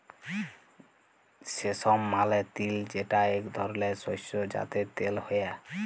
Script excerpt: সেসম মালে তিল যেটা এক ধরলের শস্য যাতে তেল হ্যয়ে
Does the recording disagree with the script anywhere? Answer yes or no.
no